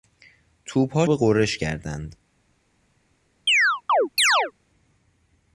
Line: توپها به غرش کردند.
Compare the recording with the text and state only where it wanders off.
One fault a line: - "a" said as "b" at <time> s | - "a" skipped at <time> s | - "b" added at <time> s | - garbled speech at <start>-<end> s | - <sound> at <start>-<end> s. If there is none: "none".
- chirp at 3.5-4.5 s